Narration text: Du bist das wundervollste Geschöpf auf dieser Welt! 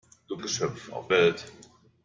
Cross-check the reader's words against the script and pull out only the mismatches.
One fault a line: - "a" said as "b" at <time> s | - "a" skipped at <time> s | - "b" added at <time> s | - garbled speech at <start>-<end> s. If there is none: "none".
- "bist das wundervollste" skipped at 0.3 s
- "dieser" skipped at 1.1 s